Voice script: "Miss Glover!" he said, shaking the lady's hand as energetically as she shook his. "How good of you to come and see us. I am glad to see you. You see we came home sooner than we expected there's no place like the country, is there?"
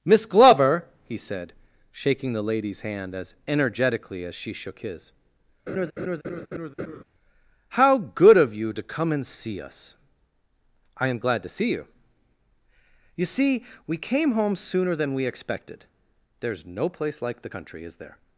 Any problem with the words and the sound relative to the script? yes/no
yes